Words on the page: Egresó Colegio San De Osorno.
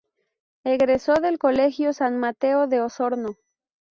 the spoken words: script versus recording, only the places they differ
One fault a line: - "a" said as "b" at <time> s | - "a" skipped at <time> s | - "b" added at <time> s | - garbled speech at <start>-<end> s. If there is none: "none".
- "del" added at 1.1 s
- "Mateo" added at 2.2 s